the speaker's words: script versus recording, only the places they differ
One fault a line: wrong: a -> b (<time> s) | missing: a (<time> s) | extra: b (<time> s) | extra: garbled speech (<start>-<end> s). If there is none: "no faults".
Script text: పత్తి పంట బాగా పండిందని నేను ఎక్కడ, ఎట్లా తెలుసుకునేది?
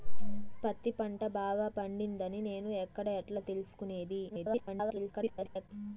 extra: garbled speech (4.3-5.7 s)